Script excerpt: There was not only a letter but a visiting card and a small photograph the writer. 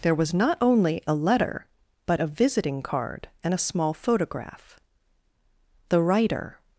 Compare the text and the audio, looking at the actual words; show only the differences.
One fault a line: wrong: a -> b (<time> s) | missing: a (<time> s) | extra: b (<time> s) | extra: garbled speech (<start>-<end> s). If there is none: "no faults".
no faults